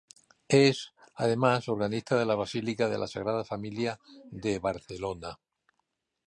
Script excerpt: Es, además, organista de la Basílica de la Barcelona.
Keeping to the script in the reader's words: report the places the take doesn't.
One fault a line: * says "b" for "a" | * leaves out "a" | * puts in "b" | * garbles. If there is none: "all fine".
* puts in "Sagrada Familia de"